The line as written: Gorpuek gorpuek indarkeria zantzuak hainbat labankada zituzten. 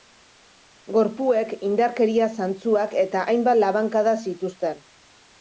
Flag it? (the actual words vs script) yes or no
yes